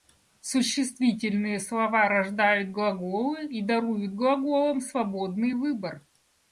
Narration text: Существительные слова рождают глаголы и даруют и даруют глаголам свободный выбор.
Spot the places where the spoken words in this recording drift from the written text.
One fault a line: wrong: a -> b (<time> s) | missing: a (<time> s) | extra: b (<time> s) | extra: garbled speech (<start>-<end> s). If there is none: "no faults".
missing: и даруют (4.1 s)